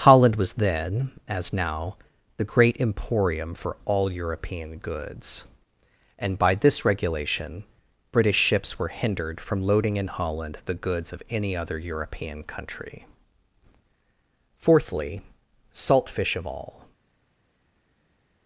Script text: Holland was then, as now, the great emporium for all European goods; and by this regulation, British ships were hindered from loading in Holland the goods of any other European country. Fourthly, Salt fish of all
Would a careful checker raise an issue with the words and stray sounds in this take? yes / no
no